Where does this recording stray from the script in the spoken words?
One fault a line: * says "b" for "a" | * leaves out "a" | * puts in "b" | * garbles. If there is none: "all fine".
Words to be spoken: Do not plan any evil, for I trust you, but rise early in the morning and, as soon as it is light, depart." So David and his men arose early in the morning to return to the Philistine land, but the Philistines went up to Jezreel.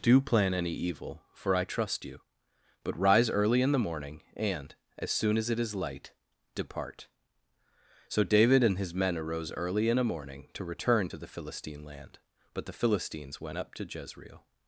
* leaves out "not"
* says "a" for "the"